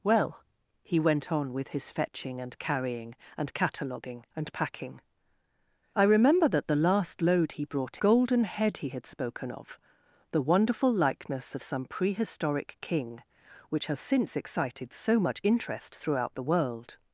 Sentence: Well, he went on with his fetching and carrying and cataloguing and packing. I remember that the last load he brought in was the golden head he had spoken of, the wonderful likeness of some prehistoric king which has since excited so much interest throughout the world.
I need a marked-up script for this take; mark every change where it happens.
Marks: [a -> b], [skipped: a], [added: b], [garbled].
Well, he went on with his fetching and carrying and cataloguing and packing. I remember that the last load he brought [skipped: in was the] golden head he had spoken of, the wonderful likeness of some prehistoric king which has since excited so much interest throughout the world.